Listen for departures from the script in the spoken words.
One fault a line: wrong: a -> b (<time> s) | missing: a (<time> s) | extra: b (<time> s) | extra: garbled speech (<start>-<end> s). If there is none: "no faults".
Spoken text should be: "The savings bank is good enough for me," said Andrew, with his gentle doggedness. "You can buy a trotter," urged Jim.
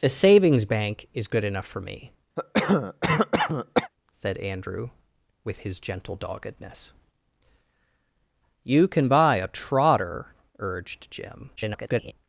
extra: garbled speech (11.6-12.1 s)